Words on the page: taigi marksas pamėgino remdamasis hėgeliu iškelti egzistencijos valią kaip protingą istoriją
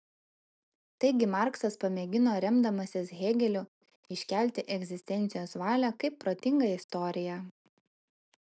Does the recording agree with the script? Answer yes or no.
yes